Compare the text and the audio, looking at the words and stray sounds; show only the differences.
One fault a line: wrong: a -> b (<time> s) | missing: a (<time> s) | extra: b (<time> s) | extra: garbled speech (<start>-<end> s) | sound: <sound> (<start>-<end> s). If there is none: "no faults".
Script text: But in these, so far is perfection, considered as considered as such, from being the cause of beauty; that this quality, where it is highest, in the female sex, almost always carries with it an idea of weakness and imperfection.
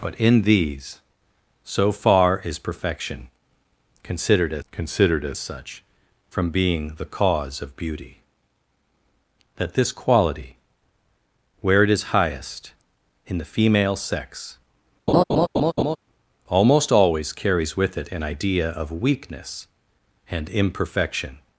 sound: laugh (15.1-16.0 s)